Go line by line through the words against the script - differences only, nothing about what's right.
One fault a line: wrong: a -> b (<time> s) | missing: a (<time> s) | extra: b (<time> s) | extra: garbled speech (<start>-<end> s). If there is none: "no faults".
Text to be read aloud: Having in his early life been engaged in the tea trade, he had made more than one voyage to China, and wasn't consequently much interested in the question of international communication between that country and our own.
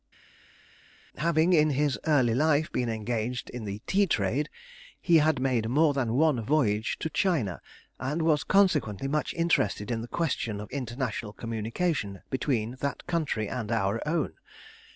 wrong: wasn't -> was (8.2 s)